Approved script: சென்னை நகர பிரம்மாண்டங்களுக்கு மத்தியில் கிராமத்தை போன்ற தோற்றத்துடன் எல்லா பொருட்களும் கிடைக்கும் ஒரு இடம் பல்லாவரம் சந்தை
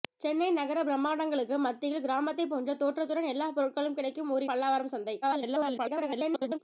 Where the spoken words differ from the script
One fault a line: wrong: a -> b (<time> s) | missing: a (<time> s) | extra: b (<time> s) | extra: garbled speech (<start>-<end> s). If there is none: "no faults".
missing: இடம் (4.5 s)
extra: garbled speech (5.2-6.6 s)